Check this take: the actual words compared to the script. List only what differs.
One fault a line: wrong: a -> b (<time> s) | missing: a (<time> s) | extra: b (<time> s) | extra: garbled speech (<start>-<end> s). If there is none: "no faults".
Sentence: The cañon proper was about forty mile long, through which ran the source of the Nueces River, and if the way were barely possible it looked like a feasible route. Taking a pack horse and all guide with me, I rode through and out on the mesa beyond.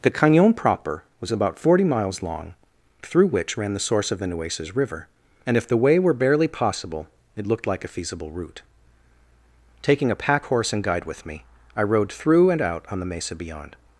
wrong: mile -> miles (1.8 s)
missing: all (10.8 s)